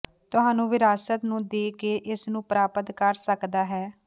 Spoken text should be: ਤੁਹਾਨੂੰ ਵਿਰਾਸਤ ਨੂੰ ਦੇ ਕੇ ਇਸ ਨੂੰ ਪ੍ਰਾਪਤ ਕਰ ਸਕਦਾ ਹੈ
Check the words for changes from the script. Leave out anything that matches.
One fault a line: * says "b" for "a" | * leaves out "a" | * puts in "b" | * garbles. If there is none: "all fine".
all fine